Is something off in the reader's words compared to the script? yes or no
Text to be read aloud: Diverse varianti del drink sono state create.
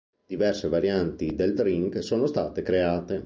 no